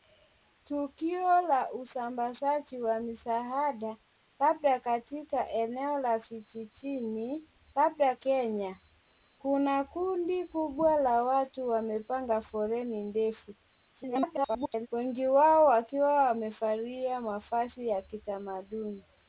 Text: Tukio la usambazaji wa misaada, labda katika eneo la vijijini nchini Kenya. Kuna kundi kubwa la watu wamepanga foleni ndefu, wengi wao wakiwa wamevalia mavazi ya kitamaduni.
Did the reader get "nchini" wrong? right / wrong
wrong